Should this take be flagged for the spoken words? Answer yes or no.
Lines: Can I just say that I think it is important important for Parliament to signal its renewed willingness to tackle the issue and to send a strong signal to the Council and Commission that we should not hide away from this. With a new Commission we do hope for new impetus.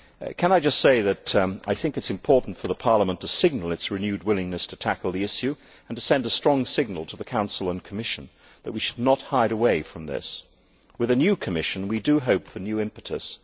yes